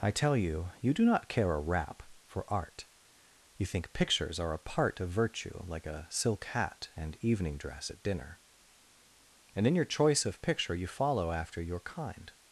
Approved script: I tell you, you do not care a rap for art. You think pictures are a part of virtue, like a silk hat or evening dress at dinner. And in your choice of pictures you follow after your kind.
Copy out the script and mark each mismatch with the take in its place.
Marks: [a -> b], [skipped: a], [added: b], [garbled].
I tell you, you do not care a rap for art. You think pictures are a part of virtue, like a silk hat [or -> and] evening dress at dinner. And in your choice of [pictures -> picture] you follow after your kind.